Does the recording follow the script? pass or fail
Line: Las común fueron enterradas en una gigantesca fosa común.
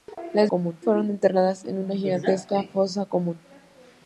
pass